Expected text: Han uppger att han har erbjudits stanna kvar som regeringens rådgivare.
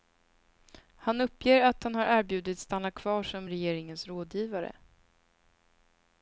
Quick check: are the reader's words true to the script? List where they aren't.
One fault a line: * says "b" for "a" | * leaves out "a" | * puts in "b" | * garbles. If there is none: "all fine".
all fine